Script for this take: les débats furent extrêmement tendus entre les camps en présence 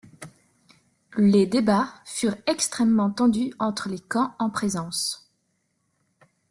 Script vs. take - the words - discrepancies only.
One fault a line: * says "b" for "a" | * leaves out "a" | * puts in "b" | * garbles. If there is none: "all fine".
all fine